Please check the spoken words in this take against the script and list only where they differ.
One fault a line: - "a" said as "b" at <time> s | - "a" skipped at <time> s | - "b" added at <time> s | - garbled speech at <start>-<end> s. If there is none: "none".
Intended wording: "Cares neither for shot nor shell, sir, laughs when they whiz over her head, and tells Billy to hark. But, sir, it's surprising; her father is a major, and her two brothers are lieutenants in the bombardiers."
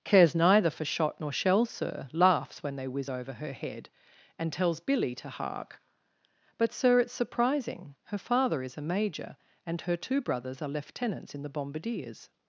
none